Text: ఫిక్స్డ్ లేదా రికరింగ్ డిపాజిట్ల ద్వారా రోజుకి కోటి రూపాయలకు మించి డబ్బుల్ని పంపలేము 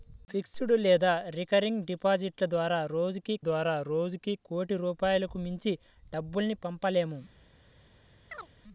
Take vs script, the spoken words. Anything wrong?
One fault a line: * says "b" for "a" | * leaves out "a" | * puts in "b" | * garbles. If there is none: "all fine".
* puts in "ద్వారా రోజుకి"